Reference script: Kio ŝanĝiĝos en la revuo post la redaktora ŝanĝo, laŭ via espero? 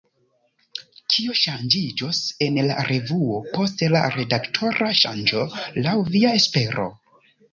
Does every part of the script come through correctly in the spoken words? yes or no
yes